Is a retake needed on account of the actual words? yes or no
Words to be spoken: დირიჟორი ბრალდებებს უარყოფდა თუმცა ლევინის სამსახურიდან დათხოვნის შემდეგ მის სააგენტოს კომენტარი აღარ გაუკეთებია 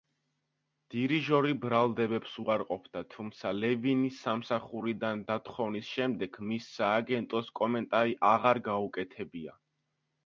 no